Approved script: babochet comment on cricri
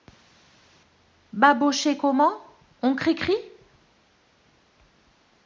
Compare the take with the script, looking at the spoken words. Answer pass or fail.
pass